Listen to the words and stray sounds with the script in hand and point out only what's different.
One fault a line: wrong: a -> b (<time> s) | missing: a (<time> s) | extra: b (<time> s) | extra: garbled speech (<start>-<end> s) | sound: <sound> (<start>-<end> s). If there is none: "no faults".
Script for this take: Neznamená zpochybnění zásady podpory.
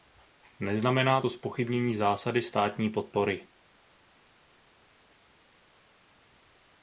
extra: to (1.2 s)
extra: státní (2.4 s)